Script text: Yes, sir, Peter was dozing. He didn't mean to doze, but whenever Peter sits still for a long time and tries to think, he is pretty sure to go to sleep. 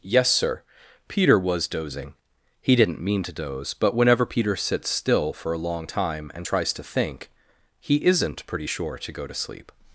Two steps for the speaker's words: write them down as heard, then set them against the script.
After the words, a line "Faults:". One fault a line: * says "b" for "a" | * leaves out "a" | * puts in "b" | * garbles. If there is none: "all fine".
Yes, sir, Peter was dozing. He didn't mean to doze, but whenever Peter sits still for a long time and tries to think, he isn't pretty sure to go to sleep.
Faults:
* says "isn't" for "is"